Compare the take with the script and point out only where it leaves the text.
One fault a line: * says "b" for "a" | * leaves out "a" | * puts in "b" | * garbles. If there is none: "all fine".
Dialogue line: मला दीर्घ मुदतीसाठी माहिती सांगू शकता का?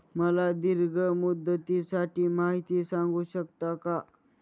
all fine